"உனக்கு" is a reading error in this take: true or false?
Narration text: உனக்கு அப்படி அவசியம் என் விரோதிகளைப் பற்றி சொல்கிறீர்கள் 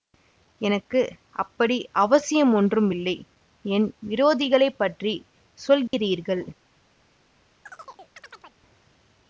true